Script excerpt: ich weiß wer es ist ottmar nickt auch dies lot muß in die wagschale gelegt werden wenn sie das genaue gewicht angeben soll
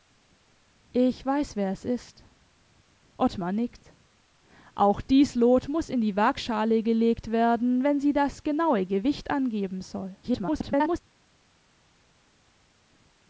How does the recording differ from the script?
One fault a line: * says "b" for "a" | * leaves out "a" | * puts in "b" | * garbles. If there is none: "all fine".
* garbles